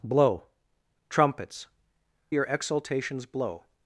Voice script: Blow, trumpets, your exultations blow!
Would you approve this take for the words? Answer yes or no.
yes